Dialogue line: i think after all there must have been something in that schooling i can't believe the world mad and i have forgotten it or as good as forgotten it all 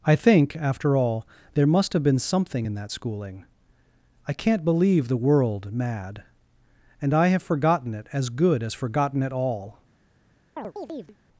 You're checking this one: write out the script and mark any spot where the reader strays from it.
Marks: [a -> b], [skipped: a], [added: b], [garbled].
i think after all there must have been something in that schooling i can't believe the world mad and i have forgotten it [skipped: or] as good as forgotten it all